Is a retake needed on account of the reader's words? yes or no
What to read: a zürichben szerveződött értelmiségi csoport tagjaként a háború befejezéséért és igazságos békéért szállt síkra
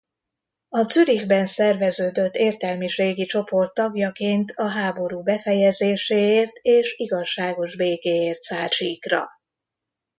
no